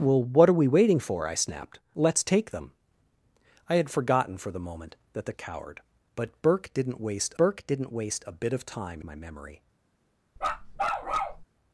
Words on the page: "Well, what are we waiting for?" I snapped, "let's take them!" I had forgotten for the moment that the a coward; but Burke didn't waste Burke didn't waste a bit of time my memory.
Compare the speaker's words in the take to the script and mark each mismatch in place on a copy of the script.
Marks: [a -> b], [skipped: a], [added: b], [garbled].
"Well, what are we waiting for?" I snapped, "let's take them!" I had forgotten for the moment that the a coward; but Burke didn't waste Burke didn't waste a bit of time my memory.